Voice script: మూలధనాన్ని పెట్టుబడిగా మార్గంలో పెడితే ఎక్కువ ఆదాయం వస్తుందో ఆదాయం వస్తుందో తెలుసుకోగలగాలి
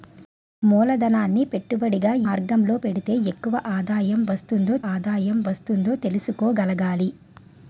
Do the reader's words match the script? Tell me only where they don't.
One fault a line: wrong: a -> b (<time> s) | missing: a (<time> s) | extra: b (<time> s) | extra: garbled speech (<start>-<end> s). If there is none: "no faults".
no faults